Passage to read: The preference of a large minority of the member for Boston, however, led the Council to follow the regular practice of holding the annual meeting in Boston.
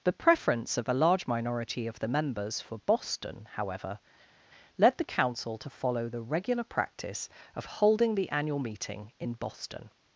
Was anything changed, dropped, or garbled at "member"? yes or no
yes